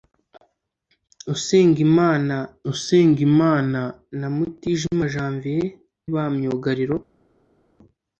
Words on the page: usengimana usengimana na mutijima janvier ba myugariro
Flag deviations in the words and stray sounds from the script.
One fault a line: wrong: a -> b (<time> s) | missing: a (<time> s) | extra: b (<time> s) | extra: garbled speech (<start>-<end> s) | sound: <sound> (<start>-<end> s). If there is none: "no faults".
no faults